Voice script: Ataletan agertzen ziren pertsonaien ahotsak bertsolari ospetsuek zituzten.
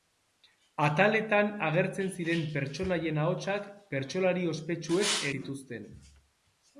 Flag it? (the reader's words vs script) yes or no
no